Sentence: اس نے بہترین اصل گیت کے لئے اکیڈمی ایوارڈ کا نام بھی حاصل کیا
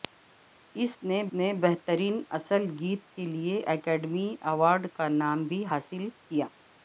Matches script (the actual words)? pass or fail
fail